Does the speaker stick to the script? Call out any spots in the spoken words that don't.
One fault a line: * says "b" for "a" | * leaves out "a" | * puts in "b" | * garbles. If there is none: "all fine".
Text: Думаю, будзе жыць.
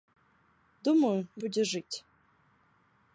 all fine